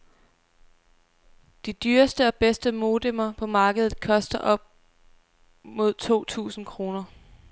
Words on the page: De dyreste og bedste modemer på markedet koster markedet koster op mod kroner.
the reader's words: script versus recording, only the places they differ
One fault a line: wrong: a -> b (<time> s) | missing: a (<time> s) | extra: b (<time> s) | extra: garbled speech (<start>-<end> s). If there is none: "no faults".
wrong: markedet koster op mod -> op mod to tusind (4.4 s)